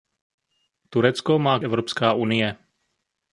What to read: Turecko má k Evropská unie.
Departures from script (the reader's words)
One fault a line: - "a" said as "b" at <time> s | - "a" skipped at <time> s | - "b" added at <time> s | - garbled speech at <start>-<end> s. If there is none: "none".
none